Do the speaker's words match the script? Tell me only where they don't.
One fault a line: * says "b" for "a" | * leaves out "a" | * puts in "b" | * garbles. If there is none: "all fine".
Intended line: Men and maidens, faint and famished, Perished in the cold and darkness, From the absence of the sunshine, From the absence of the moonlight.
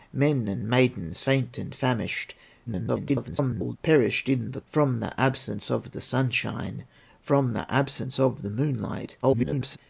* garbles
* leaves out "cold and darkness"
* garbles